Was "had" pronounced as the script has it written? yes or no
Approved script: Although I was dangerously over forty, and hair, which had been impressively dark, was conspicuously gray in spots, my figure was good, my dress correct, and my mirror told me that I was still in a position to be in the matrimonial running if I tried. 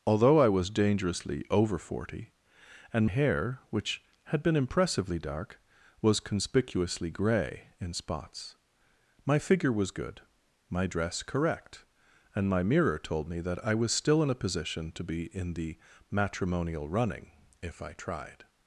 yes